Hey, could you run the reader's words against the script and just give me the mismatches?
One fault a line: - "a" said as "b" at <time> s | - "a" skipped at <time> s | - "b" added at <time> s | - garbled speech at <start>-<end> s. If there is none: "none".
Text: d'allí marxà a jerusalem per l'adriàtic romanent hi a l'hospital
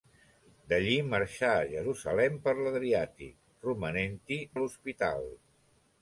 none